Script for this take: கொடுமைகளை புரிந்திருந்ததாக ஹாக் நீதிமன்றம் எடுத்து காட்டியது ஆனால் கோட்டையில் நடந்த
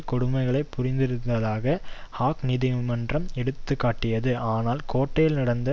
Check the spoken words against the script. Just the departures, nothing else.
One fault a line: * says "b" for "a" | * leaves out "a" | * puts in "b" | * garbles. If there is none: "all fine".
all fine